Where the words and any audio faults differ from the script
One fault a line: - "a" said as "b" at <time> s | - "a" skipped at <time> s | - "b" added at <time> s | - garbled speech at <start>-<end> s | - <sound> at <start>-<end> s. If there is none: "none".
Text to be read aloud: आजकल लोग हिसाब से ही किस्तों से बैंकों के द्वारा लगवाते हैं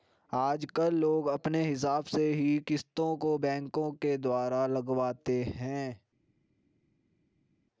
- "अपने" added at 1.3 s
- "से" said as "को" at 3.2 s